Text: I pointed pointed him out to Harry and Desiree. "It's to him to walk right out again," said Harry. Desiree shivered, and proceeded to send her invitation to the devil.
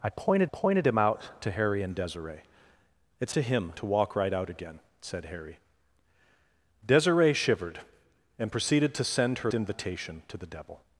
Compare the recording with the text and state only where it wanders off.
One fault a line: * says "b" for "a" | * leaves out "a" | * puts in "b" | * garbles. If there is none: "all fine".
all fine